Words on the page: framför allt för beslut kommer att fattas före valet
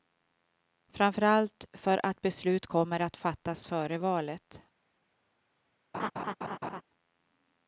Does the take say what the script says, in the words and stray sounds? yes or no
no